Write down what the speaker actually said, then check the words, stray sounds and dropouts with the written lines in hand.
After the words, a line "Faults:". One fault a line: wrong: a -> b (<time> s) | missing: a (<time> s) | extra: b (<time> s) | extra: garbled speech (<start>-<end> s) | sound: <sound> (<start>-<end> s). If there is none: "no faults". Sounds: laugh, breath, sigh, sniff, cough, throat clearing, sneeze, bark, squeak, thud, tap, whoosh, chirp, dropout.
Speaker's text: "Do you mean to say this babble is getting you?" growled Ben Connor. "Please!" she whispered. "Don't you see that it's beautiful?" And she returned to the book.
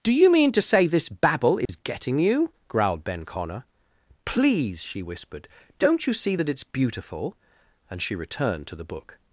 "Do you mean to say this babble is getting you?" growled Ben Connor. "Please!" she whispered. "Don't you see that it's beautiful?" And she returned to the book.
Faults:
sound: dropout (1.7-1.7 s)